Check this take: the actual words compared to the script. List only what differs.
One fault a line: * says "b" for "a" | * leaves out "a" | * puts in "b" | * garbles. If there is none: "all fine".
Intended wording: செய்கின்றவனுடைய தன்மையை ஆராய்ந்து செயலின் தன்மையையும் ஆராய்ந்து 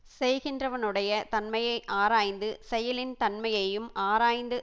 all fine